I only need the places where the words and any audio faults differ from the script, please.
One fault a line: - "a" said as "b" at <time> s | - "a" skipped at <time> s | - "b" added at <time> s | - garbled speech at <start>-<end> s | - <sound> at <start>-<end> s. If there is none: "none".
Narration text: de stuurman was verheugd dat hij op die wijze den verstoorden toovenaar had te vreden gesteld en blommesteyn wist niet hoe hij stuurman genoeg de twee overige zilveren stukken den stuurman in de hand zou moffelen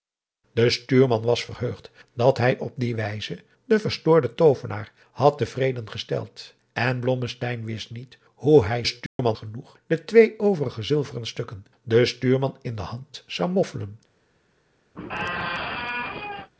- dropout at 9.1-9.2 s
- squeak at 15.0-16.5 s